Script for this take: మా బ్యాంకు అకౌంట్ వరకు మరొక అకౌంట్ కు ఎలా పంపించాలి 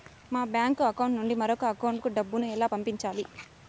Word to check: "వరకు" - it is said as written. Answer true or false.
false